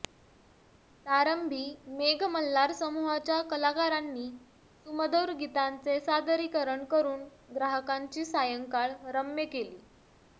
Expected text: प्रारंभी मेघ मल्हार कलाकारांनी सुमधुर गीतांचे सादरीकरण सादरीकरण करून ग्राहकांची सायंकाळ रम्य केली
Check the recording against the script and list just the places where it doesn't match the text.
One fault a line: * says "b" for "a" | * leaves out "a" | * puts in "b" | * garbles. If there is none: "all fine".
* puts in "समूहाच्या"
* leaves out "सादरीकरण"